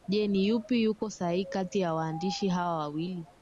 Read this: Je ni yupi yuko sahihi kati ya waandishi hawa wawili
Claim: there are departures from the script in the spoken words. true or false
false